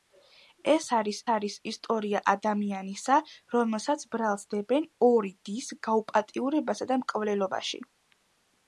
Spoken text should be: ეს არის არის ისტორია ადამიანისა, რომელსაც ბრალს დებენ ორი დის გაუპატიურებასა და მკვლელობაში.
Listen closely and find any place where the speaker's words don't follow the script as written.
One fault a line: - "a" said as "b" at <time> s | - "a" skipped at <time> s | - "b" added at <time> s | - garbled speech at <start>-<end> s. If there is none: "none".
none